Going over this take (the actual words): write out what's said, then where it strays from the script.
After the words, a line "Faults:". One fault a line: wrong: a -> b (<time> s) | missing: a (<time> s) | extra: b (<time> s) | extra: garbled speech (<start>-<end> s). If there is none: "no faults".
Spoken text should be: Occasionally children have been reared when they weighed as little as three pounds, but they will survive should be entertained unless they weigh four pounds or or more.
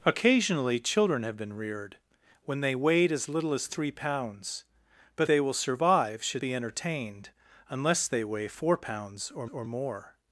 Occasionally children have been reared when they weighed as little as three pounds, but they will survive should be entertained unless they weigh four pounds or or more.
Faults:
no faults